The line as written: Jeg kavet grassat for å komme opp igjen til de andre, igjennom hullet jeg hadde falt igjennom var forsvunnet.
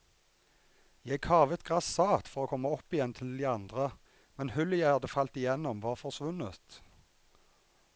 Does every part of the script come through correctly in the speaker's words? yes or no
no